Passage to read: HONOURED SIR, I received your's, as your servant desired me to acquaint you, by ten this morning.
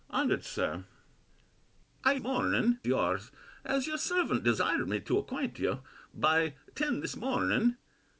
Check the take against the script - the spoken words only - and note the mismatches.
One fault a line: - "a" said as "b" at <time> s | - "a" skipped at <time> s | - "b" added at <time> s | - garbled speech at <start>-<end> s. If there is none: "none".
- "received" said as "morning" at 2.2 s